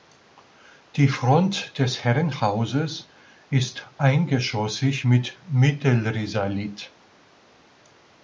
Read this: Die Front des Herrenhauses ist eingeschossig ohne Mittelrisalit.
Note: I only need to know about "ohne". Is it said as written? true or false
false